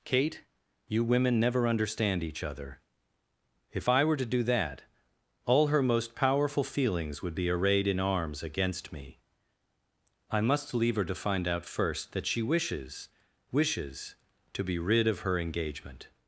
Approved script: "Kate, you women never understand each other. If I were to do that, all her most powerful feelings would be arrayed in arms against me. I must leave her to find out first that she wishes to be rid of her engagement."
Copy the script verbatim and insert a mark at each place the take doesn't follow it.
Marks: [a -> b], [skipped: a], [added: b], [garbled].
"Kate, you women never understand each other. If I were to do that, all her most powerful feelings would be arrayed in arms against me. I must leave her to find out first that she wishes [added: wishes] to be rid of her engagement."